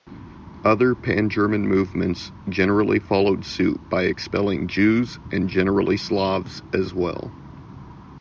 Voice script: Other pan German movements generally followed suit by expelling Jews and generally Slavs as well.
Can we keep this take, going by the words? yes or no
yes